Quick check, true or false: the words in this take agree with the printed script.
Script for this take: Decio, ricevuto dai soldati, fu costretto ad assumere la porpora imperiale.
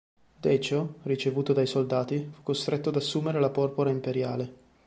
true